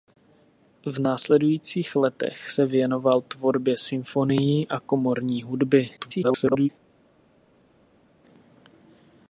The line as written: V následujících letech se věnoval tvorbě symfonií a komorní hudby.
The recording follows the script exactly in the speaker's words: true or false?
false